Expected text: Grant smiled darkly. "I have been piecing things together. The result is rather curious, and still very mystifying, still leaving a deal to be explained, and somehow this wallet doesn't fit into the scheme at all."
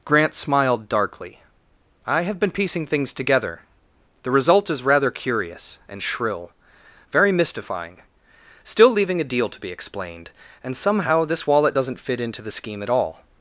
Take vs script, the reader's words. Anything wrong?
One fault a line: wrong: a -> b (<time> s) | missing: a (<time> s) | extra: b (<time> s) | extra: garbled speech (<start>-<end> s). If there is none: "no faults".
wrong: still -> shrill (6.0 s)